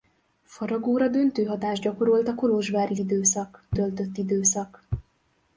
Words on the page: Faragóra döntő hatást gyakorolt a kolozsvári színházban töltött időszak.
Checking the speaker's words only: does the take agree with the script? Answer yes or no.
no